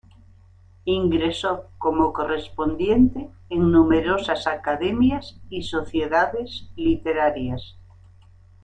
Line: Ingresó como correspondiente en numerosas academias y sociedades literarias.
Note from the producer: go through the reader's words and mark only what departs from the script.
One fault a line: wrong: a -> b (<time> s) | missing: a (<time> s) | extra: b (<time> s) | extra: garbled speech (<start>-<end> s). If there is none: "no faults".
no faults